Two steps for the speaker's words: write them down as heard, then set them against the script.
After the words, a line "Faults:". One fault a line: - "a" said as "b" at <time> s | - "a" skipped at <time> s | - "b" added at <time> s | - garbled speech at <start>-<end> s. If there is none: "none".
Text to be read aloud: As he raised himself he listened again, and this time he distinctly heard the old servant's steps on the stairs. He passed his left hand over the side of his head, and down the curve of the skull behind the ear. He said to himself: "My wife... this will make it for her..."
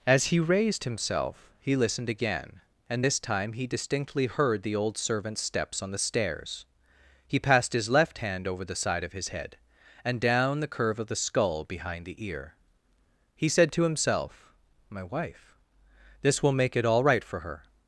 As he raised himself he listened again, and this time he distinctly heard the old servant's steps on the stairs. He passed his left hand over the side of his head, and down the curve of the skull behind the ear. He said to himself: "My wife... this will make it all right for her..."
Faults:
- "all right" added at 16.8 s